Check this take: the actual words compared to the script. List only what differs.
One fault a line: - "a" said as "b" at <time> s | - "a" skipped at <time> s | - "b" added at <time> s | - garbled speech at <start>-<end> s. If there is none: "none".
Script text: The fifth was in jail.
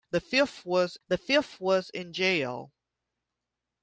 - "the fifth was" added at 1.1 s